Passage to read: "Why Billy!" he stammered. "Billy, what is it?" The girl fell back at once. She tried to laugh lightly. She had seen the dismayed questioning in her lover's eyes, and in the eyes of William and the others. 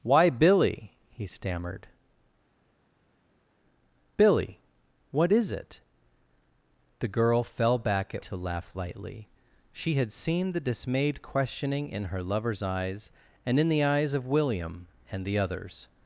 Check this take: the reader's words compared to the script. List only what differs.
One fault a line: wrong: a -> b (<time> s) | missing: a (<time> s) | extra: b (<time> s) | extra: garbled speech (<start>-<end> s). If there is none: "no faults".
missing: once She tried (8.2 s)